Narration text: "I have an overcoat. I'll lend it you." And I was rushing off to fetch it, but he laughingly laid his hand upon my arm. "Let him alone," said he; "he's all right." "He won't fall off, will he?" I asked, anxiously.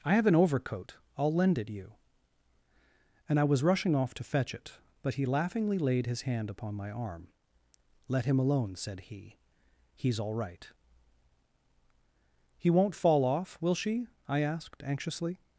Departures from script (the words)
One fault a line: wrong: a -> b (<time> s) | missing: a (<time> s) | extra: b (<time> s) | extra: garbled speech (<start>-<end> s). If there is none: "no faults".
wrong: he -> she (13.8 s)